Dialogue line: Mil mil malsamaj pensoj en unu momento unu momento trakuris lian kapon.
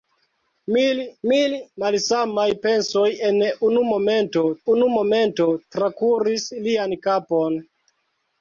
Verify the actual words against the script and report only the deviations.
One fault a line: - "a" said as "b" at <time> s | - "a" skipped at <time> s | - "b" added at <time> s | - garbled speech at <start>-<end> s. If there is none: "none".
none